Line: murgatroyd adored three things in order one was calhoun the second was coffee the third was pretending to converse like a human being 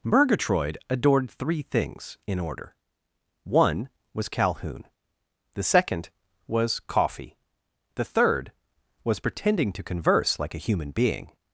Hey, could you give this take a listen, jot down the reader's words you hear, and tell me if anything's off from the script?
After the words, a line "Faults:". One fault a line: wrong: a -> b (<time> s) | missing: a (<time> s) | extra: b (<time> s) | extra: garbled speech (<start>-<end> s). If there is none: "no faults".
murgatroyd adored three things in order one was calhoun the second was coffee the third was pretending to converse like a human being
Faults:
no faults